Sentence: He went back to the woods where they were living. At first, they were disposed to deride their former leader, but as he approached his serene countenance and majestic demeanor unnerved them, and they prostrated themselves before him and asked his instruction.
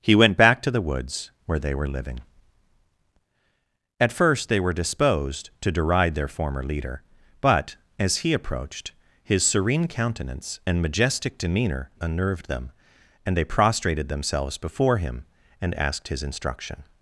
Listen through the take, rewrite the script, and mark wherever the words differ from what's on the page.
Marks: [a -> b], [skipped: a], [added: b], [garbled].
He went back to the woods where they were living. At first, they were disposed to deride their former leader, but as he approached his serene countenance and majestic demeanor unnerved them, and they prostrated themselves before him and asked his instruction.